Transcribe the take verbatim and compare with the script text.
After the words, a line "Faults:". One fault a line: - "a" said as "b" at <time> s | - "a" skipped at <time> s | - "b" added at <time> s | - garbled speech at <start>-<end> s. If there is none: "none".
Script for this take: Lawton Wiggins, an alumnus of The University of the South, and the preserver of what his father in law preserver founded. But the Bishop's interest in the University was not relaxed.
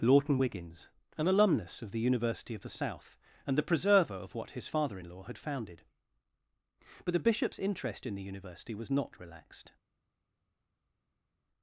Lawton Wiggins, an alumnus of The University of the South, and the preserver of what his father in law had founded. But the Bishop's interest in the University was not relaxed.
Faults:
- "preserver" said as "had" at 5.2 s